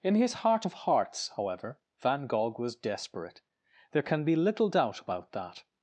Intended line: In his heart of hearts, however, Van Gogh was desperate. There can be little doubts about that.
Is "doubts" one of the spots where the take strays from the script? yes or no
yes